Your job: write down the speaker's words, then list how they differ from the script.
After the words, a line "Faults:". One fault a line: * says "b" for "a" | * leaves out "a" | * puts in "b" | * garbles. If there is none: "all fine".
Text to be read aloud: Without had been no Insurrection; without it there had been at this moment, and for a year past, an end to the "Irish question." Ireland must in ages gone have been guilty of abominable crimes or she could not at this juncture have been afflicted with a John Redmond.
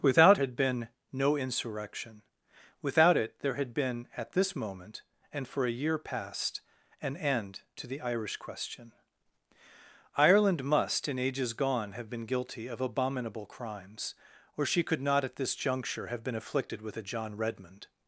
Without had been no Insurrection; without it there had been at this moment, and for a year past, an end to the "Irish question." Ireland must in ages gone have been guilty of abominable crimes or she could not at this juncture have been afflicted with a John Redmond.
Faults:
all fine